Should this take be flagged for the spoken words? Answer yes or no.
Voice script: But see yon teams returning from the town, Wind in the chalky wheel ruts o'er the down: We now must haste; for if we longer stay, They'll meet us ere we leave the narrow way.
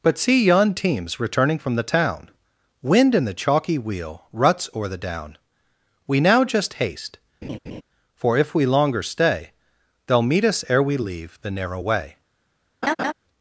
yes